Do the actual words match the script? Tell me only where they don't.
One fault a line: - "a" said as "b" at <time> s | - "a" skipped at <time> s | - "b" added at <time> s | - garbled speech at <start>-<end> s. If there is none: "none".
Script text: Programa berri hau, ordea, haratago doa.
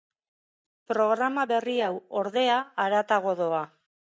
none